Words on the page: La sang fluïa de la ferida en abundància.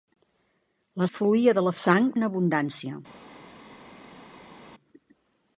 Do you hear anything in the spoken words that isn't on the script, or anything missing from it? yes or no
yes